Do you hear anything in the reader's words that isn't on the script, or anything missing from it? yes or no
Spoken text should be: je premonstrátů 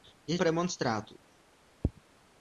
no